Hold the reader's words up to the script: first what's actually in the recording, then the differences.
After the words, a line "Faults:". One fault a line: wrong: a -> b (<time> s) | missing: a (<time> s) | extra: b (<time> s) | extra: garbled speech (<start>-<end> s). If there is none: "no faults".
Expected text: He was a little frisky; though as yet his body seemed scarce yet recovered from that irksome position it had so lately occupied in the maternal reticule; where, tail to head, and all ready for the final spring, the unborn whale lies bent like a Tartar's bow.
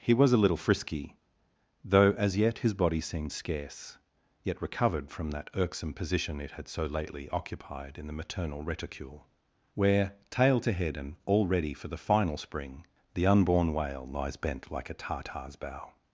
He was a little frisky; though as yet his body seemed scarce yet recovered from that irksome position it had so lately occupied in the maternal reticule; where, tail to head, and all ready for the final spring, the unborn whale lies bent like a Tartar's bow.
Faults:
no faults